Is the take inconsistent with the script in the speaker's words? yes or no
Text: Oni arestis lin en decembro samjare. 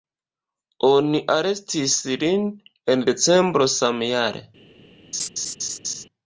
no